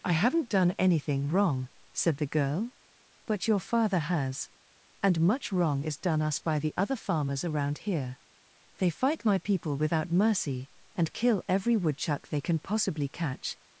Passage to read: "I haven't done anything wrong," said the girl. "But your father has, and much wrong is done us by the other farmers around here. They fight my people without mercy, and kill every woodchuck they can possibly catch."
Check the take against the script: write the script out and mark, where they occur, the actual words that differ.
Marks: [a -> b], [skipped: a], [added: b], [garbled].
"I haven't done anything wrong," said the girl. "But your father has, and much wrong is done us by the other farmers around here. They fight my people without mercy, and kill every woodchuck they can possibly catch."